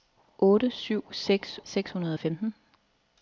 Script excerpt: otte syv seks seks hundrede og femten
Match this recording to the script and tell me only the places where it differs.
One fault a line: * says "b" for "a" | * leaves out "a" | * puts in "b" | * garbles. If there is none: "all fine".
all fine